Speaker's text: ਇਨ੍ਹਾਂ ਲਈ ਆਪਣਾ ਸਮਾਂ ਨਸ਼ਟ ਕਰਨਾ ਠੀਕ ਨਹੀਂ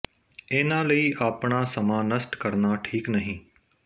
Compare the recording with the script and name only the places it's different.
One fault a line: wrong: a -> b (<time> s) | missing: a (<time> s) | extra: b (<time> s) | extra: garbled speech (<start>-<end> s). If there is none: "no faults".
no faults